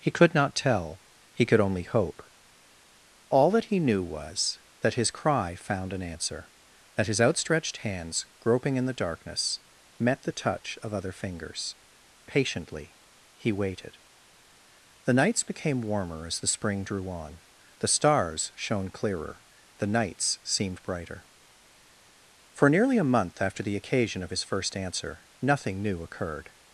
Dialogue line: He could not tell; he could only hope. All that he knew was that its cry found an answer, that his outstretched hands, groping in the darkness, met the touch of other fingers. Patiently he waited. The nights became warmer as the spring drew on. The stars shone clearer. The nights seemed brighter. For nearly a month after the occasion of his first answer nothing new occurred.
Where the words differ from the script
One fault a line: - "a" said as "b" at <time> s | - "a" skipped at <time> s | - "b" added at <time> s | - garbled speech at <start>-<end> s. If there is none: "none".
- "its" said as "his" at 4.9 s